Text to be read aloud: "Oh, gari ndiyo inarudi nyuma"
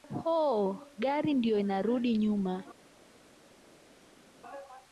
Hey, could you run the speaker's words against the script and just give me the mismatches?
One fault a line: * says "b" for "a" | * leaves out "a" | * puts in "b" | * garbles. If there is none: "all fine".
all fine